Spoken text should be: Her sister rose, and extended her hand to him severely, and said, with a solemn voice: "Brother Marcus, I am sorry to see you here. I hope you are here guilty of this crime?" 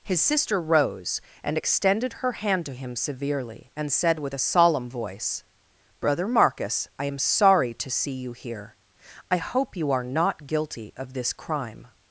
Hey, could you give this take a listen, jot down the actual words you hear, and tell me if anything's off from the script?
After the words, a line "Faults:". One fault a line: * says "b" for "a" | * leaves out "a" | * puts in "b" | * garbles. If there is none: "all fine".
His sister rose, and extended her hand to him severely, and said, with a solemn voice: "Brother Marcus, I am sorry to see you here. I hope you are not guilty of this crime?"
Faults:
* says "His" for "Her"
* says "not" for "here"